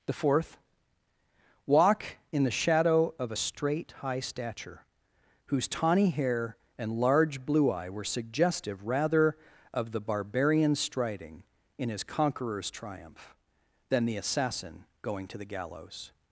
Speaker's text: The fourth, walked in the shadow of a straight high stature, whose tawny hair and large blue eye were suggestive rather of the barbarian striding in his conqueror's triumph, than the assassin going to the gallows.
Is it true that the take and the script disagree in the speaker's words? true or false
true